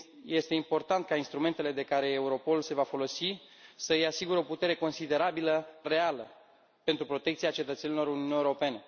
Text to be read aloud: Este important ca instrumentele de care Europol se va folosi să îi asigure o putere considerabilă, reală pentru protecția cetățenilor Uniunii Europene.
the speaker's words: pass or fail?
pass